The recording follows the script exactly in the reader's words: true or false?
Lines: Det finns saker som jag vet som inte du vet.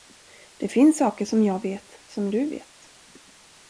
false